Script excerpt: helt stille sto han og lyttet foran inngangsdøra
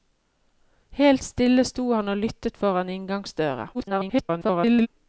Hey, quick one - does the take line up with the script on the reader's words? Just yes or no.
no